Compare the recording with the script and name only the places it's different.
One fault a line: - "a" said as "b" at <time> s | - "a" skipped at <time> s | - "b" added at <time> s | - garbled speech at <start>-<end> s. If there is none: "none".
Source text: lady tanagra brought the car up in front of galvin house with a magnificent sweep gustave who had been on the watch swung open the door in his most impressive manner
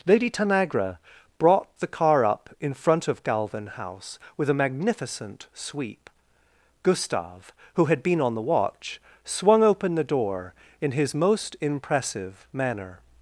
none